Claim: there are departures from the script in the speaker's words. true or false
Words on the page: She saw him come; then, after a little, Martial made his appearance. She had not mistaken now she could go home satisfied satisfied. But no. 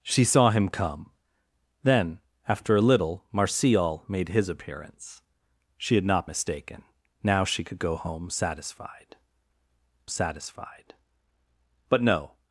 false